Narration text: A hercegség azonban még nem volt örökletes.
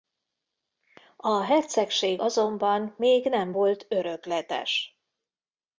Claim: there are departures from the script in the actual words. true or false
false